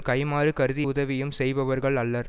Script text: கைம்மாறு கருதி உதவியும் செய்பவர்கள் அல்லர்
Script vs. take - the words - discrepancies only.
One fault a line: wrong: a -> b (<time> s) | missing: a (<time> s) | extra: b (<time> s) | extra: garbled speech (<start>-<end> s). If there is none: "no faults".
no faults